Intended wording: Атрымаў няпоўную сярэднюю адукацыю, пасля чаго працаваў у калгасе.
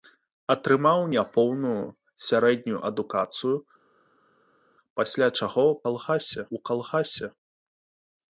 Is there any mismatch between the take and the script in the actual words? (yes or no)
yes